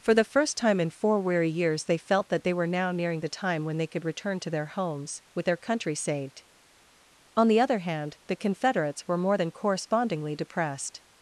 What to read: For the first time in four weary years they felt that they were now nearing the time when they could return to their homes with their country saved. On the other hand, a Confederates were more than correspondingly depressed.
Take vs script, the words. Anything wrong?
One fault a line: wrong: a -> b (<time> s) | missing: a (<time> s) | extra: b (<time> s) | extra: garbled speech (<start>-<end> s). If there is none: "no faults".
wrong: a -> the (8.3 s)